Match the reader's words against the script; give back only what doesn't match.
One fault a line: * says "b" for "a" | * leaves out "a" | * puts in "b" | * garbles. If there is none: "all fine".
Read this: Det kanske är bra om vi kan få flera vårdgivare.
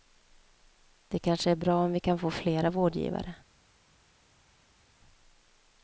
all fine